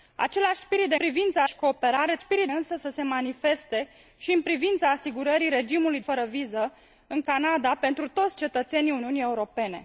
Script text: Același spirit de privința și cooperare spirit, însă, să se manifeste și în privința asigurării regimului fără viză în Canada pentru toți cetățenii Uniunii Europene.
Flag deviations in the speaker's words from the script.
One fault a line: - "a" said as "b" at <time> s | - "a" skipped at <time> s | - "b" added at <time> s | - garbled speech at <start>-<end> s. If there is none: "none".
none